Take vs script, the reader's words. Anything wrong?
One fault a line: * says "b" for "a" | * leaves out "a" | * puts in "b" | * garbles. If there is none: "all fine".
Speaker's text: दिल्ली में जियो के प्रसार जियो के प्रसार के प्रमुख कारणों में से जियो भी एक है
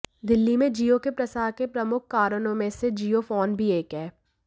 * leaves out "जियो"
* leaves out "प्रसार के"
* puts in "फोन"